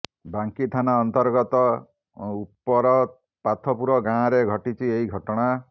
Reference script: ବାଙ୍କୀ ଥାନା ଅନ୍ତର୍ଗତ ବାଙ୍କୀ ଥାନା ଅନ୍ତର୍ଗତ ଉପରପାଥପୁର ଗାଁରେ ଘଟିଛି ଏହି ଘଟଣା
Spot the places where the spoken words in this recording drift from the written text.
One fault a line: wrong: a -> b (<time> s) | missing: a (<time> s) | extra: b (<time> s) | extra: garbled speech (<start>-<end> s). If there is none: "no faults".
missing: ବାଙ୍କୀ ଥାନା ଅନ୍ତର୍ଗତ (1.6 s)